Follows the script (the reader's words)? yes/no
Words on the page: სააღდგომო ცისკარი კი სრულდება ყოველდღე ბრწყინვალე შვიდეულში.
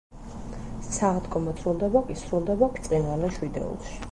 no